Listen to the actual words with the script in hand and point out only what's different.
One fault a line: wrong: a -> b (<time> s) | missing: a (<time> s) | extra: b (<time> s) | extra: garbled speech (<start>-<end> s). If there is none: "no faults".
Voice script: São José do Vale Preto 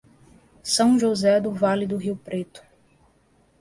extra: do Rio (1.8 s)